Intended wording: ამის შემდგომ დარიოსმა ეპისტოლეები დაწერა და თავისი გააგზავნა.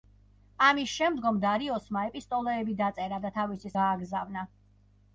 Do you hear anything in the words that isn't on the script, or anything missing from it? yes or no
no